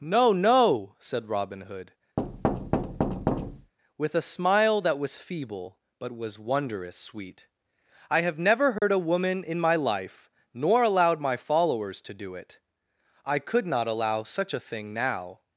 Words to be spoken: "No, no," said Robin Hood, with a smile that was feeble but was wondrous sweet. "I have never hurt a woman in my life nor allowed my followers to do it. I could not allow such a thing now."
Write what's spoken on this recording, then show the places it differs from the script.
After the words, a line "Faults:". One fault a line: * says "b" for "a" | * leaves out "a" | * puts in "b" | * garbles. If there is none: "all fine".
"No, no," said Robin Hood, with a smile that was feeble but was wondrous sweet. "I have never hurt a woman in my life nor allowed my followers to do it. I could not allow such a thing now."
Faults:
all fine